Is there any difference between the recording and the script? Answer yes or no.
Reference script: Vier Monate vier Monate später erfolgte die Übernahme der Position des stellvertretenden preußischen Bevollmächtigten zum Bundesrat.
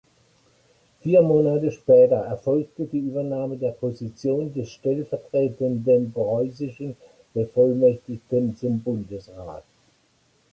yes